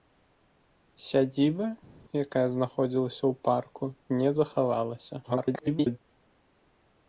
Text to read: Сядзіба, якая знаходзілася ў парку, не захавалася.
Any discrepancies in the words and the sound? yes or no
yes